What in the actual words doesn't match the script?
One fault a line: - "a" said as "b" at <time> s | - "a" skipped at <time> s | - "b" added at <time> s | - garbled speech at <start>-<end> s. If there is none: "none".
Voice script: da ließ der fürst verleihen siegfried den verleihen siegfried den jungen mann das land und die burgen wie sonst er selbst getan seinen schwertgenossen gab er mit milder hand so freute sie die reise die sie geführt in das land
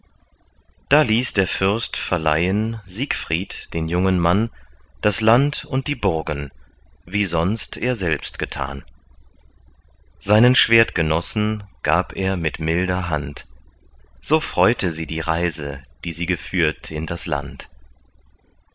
- "verleihen siegfried den" skipped at 3.9 s